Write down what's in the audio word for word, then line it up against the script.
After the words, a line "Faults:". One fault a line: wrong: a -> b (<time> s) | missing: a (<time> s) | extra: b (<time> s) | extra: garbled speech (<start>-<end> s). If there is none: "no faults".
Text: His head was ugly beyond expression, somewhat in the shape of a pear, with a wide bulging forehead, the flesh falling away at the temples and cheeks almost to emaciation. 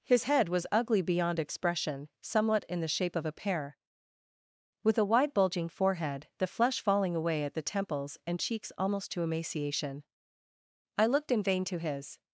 His head was ugly beyond expression, somewhat in the shape of a pear, with a wide bulging forehead, the flesh falling away at the temples and cheeks almost to emaciation. I looked in vain to his
Faults:
extra: I looked in vain to his (11.0 s)